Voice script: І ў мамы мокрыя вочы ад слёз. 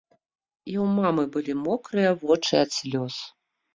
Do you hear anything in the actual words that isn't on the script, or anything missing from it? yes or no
yes